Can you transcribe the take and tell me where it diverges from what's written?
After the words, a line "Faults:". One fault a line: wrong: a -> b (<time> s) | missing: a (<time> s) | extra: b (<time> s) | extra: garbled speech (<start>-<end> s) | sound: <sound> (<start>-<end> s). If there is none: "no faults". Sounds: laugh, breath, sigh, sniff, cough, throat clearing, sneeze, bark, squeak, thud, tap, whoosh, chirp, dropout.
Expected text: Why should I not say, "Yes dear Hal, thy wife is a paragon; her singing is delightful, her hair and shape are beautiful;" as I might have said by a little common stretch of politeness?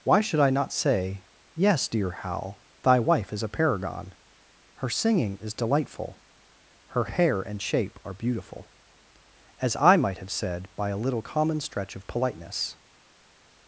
Why should I not say, "Yes dear Hal, thy wife is a paragon; her singing is delightful, her hair and shape are beautiful;" as I might have said by a little common stretch of politeness?
Faults:
no faults